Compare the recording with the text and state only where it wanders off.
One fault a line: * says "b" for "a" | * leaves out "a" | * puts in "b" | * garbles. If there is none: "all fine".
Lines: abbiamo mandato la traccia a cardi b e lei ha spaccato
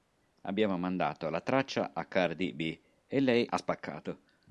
all fine